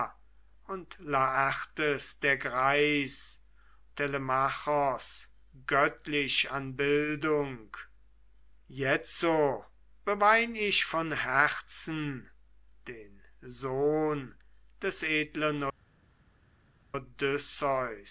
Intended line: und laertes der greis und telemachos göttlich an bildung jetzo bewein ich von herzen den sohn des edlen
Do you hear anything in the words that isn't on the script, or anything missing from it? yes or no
yes